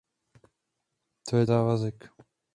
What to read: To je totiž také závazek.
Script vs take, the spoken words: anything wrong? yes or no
yes